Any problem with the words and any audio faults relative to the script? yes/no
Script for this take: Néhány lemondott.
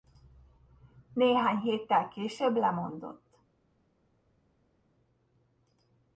yes